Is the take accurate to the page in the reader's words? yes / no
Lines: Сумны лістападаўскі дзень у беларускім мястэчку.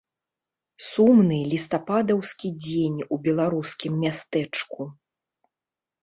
yes